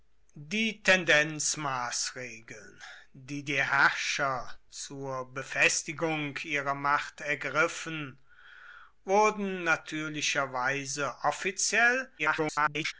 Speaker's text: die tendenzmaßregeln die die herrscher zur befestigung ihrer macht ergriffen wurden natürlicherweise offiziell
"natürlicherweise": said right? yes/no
yes